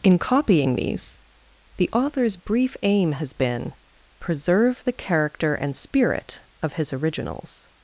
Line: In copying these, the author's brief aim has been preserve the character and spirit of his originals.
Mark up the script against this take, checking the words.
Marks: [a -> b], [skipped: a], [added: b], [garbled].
In copying these, the author's brief aim has been preserve the character and spirit of his originals.